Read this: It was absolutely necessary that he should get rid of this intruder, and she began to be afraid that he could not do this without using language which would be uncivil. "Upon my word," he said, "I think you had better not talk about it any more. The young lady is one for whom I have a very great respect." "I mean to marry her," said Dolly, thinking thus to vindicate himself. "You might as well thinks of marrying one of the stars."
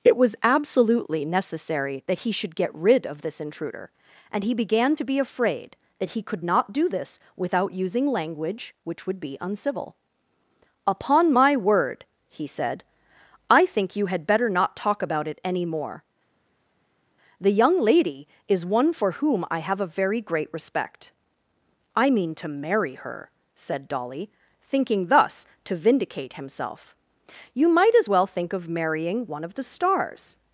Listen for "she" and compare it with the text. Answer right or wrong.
wrong